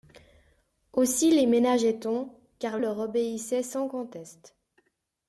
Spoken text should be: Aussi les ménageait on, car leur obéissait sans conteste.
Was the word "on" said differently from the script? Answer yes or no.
no